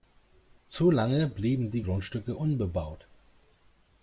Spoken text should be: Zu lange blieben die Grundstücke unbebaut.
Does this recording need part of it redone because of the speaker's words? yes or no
no